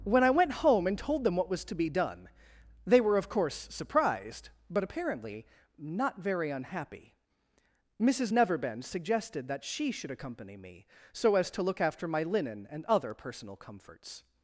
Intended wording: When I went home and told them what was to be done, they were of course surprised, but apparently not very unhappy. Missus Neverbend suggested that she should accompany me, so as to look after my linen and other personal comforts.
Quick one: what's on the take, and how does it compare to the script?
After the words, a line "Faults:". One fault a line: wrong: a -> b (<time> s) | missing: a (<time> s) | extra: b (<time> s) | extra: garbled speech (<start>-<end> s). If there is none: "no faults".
When I went home and told them what was to be done, they were of course surprised, but apparently not very unhappy. Missus Neverbend suggested that she should accompany me, so as to look after my linen and other personal comforts.
Faults:
no faults